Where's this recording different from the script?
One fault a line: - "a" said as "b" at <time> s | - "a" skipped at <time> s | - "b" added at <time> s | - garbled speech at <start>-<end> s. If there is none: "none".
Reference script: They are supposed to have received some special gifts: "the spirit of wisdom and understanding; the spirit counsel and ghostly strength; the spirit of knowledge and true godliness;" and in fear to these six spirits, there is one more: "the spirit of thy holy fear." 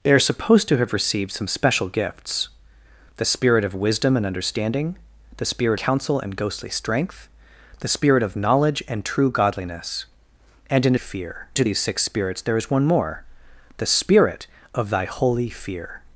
none